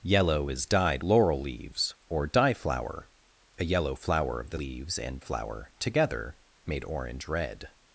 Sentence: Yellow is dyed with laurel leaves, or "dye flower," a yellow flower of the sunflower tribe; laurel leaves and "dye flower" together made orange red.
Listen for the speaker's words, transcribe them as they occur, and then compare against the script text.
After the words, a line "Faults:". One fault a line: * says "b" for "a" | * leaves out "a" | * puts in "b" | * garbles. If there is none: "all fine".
Yellow is dyed laurel leaves, or "dye flower," a yellow flower of the leaves and "flower" together made orange red.
Faults:
* leaves out "with"
* leaves out "sunflower tribe laurel"
* leaves out "dye"